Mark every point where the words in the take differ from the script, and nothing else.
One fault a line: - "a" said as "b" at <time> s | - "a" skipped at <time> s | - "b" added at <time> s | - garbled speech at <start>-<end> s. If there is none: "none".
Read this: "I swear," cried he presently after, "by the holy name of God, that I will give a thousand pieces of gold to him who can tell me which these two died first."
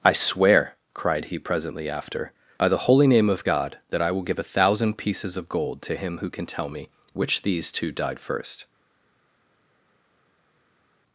none